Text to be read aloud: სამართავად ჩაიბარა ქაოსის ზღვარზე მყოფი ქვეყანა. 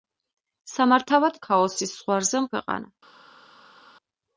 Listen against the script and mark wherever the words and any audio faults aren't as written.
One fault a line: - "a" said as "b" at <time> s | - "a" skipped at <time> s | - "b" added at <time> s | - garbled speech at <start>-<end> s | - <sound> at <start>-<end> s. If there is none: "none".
- "ჩაიბარა" skipped at 1.4 s
- "მყოფი" skipped at 2.5 s